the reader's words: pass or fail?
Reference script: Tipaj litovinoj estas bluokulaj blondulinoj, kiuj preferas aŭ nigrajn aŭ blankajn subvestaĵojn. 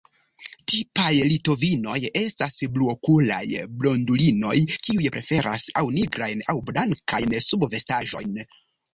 pass